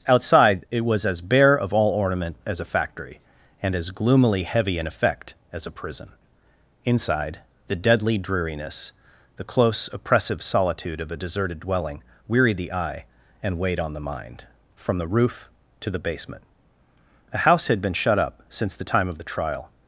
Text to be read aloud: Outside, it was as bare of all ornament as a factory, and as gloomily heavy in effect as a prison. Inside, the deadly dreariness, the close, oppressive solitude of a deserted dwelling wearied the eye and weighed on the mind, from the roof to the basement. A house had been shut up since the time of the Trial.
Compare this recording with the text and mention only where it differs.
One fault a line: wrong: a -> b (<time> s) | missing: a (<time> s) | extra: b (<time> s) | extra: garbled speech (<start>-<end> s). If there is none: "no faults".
no faults